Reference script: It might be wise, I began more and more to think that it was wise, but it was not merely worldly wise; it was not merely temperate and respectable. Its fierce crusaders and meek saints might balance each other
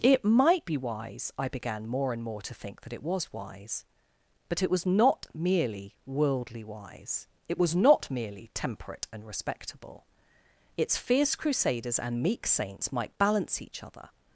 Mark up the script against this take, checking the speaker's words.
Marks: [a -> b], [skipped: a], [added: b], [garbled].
It might be wise, I began more and more to think that it was wise, but it was not merely worldly wise; it was not merely temperate and respectable. Its fierce crusaders and meek saints might balance each other